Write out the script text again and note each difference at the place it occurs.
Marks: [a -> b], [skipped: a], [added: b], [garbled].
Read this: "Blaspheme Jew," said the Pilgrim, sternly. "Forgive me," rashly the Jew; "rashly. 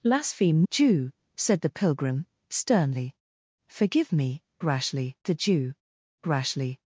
"Blaspheme Jew," said the Pilgrim, sternly. "Forgive me," rashly the Jew; "rashly.